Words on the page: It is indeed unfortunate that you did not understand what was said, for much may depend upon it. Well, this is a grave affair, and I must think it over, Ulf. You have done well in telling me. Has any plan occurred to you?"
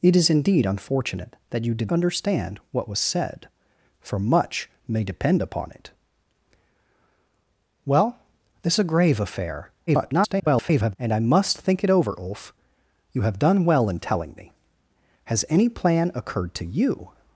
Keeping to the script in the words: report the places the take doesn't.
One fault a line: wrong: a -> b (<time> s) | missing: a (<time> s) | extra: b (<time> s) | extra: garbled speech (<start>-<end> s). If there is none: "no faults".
missing: not (1.9 s)
missing: is (8.8 s)
extra: garbled speech (9.9-11.0 s)